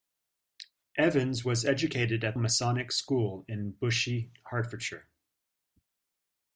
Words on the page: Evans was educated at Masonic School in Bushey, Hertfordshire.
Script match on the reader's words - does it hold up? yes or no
yes